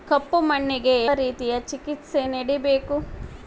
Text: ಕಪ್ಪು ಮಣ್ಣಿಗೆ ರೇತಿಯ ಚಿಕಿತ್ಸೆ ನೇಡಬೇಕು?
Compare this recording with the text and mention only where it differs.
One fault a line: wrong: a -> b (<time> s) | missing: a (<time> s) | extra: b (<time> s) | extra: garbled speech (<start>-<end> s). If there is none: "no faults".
no faults